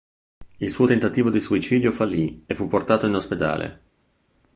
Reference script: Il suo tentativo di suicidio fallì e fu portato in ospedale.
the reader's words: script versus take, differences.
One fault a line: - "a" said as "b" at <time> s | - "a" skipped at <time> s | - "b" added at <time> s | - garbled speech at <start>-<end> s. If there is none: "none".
none